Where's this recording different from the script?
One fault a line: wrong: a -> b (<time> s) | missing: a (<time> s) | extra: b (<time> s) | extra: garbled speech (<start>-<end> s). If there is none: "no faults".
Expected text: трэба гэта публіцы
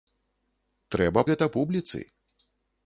no faults